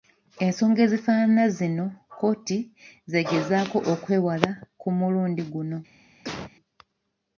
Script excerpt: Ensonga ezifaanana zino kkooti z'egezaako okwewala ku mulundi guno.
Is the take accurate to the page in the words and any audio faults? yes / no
no